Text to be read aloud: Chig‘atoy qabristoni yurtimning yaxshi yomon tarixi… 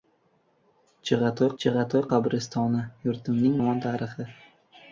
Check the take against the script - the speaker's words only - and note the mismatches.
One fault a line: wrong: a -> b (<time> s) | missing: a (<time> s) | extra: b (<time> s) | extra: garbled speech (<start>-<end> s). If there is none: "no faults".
extra: chig‘atoy (1.6 s)
missing: yaxshi (3.6 s)